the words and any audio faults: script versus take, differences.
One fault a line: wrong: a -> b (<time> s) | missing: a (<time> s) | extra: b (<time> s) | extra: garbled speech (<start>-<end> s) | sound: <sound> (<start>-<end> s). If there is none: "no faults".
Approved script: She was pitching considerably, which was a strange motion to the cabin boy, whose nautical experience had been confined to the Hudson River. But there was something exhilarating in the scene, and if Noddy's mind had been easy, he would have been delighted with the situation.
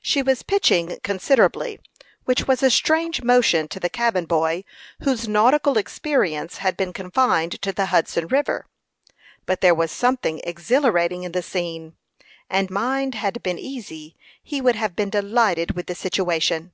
missing: if Noddy's (12.7 s)